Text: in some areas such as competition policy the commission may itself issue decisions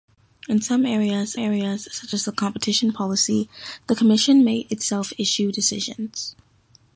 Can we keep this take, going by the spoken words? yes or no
no